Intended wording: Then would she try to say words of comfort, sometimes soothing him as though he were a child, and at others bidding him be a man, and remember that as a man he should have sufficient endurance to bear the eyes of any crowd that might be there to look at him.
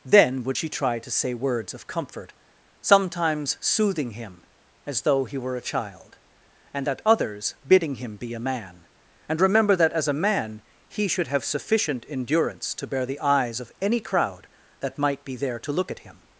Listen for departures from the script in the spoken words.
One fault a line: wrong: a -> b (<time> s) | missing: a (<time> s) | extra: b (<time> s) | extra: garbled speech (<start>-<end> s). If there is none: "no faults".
no faults